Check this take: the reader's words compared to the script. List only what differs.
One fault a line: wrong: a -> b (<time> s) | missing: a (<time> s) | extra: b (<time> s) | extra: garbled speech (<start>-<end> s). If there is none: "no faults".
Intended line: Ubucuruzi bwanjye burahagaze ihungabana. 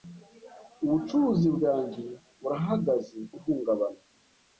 no faults